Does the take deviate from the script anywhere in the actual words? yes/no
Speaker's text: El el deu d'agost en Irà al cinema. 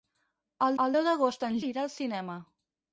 no